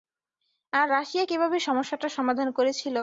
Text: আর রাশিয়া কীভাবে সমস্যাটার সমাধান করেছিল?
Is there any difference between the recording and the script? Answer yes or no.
no